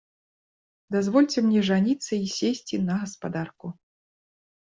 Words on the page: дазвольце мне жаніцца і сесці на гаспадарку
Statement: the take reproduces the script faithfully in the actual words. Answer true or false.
true